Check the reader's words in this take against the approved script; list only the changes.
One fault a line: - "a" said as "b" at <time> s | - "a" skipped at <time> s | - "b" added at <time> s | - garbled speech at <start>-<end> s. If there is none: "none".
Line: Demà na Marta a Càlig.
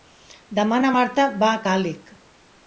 - "va" added at 1.4 s